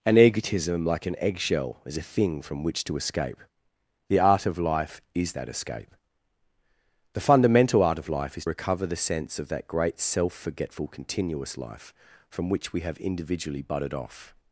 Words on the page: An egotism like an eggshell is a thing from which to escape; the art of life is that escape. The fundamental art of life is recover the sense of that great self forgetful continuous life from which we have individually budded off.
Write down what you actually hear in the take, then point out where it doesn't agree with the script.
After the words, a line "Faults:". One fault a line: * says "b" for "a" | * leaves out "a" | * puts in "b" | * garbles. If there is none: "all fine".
An egotism like an eggshell is a thing from which to escape; the art of life is that escape. The fundamental art of life is recover the sense of that great self forgetful continuous life from which we have individually budded off.
Faults:
all fine